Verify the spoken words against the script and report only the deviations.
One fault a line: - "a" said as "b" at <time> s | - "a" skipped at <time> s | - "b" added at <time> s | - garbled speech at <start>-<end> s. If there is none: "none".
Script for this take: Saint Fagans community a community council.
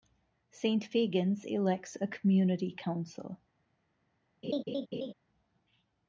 - "community" said as "elects" at 1.4 s